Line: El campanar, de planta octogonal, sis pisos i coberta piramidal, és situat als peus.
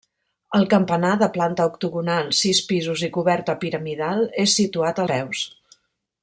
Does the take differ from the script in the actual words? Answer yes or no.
yes